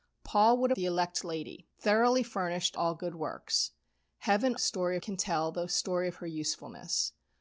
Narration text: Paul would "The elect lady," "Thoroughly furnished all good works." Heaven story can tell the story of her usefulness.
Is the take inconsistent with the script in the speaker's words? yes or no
no